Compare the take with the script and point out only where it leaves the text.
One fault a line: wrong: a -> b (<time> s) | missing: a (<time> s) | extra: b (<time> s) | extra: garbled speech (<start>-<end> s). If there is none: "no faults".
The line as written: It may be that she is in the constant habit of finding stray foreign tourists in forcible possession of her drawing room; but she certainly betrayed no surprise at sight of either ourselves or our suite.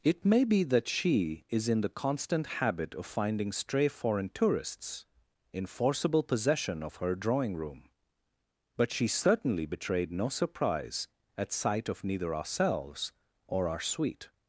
wrong: either -> neither (12.0 s)